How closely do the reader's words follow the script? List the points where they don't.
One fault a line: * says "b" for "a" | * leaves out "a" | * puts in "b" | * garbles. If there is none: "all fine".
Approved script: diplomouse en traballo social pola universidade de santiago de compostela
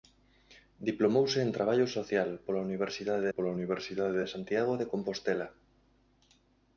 * puts in "pola universidade"